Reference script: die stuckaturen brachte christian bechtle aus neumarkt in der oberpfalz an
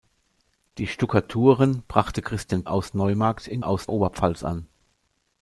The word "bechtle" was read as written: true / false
false